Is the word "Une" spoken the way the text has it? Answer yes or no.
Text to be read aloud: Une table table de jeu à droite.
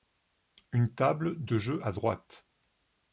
yes